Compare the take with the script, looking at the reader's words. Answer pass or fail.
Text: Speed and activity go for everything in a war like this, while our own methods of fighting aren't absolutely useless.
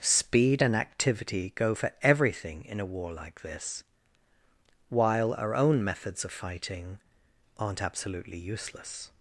pass